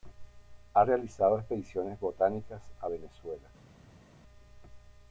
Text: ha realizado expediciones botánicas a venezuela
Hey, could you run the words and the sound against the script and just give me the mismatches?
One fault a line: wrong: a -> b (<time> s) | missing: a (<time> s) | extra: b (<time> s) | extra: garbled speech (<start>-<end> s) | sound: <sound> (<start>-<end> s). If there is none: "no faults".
no faults